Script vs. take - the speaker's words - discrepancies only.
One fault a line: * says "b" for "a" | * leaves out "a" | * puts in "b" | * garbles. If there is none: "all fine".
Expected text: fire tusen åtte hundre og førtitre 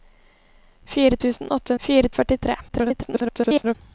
* says "fire" for "hundre"
* garbles